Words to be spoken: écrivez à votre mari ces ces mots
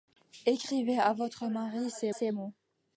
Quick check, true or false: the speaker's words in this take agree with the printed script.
true